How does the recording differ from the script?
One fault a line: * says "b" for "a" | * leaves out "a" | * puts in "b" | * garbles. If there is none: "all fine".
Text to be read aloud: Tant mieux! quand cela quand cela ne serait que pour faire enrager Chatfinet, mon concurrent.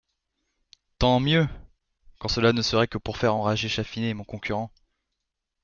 * leaves out "quand cela"